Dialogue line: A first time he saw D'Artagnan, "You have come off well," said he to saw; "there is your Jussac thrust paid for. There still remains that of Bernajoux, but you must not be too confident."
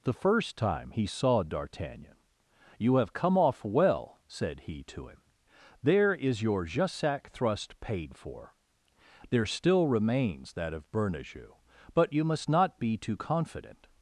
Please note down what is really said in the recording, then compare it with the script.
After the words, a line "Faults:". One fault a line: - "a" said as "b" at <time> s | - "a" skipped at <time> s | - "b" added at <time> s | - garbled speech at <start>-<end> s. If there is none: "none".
The first time he saw D'Artagnan, "You have come off well," said he to him; "there is your Jussac thrust paid for. There still remains that of Bernajoux, but you must not be too confident."
Faults:
- "A" said as "The" at 0.0 s
- "saw" said as "him" at 5.1 s